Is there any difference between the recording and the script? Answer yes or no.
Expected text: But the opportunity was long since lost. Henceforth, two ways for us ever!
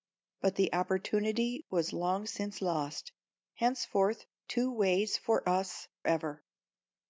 no